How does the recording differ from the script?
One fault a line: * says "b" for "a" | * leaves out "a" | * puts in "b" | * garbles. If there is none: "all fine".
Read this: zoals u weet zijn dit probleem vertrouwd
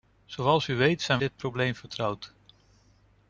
all fine